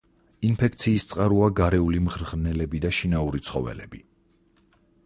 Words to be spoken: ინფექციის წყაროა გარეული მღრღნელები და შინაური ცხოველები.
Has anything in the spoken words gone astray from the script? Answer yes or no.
no